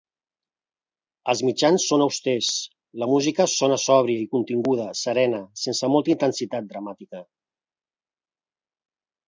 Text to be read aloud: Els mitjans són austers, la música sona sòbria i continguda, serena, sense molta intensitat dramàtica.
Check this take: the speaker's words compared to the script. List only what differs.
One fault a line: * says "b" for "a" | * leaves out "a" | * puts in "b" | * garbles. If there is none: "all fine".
all fine